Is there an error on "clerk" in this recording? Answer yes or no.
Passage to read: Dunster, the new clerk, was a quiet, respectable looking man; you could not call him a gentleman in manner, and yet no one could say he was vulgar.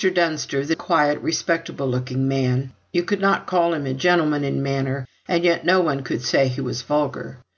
yes